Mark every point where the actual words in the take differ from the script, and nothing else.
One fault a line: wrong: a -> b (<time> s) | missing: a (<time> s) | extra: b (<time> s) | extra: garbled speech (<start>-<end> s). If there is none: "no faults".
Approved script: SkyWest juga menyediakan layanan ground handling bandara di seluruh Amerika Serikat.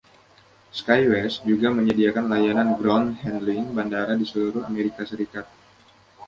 no faults